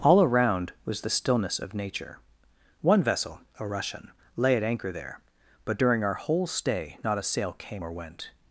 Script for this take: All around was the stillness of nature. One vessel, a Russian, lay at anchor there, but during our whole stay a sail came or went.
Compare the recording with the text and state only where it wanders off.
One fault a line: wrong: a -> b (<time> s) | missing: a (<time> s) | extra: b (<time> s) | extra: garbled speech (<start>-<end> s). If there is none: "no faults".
extra: not (7.0 s)